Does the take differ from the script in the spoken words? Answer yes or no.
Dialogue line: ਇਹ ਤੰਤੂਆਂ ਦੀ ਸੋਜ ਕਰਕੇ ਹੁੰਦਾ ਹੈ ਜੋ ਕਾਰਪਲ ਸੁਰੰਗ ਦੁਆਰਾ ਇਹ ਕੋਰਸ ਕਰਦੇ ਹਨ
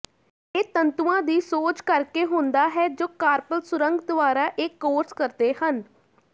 no